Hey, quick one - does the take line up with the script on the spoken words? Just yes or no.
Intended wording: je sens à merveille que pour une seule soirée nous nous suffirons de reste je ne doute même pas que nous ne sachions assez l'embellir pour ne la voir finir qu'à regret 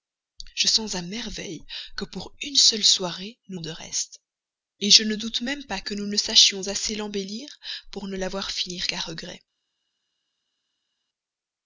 no